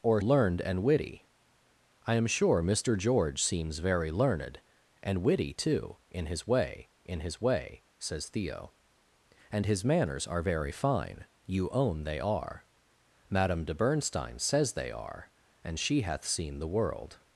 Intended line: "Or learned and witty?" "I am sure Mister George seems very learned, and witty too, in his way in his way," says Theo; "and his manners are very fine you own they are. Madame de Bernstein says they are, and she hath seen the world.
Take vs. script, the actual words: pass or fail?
pass